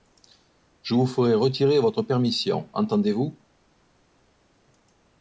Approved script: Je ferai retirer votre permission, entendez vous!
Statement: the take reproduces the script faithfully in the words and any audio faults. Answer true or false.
false